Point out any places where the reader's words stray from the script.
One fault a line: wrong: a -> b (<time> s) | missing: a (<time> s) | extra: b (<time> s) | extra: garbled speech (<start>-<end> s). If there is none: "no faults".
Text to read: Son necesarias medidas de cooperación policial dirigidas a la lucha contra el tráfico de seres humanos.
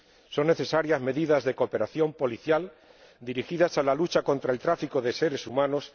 no faults